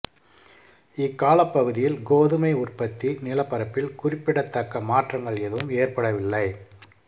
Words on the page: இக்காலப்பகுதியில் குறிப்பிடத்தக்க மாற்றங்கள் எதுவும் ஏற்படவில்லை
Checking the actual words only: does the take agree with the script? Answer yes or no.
no